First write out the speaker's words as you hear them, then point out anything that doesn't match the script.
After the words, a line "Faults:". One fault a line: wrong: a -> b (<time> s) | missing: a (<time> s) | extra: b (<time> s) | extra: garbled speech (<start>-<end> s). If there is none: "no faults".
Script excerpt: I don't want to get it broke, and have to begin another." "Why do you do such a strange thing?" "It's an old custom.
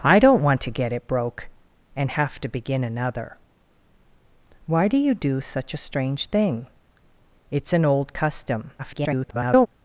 I don't want to get it broke, and have to begin another." "Why do you do such a strange thing?" "It's an old custom. [garbled]
Faults:
extra: garbled speech (8.8-9.7 s)